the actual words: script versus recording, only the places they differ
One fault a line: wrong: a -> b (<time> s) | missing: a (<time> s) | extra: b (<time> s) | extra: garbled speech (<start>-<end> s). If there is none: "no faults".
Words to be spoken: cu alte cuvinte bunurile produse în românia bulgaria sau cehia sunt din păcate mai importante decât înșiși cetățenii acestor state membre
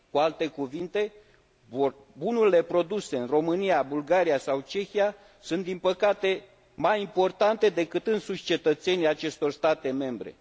no faults